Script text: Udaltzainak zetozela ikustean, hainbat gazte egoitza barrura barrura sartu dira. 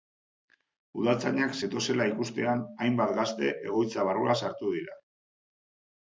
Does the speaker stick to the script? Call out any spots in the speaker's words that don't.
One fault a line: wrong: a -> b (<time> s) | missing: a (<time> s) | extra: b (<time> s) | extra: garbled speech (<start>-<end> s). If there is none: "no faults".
missing: barrura (4.4 s)